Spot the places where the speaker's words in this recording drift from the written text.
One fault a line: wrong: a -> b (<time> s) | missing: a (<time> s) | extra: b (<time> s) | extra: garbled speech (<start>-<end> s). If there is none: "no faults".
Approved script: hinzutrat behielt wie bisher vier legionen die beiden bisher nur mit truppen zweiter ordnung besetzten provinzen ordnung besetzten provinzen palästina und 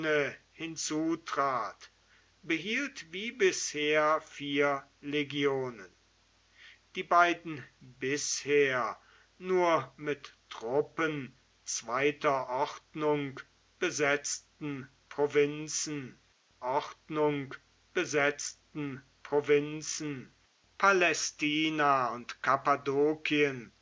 no faults